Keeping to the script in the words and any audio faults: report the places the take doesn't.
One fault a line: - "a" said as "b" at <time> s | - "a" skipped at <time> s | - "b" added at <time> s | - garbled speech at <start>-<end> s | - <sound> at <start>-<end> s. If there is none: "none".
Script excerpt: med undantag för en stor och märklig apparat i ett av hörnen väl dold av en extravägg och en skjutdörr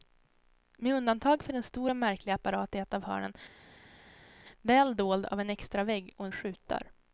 none